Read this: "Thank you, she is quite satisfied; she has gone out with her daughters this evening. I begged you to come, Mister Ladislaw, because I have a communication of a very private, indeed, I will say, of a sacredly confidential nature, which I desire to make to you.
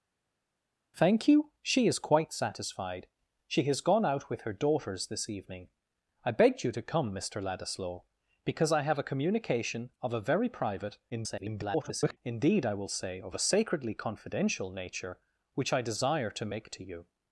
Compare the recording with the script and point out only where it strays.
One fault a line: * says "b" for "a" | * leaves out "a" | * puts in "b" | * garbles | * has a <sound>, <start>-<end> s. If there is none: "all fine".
* garbles